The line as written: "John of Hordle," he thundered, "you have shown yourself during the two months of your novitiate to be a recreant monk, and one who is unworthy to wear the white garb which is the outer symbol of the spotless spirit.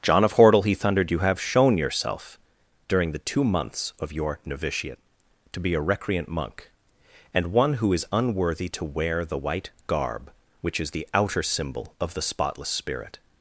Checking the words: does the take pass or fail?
pass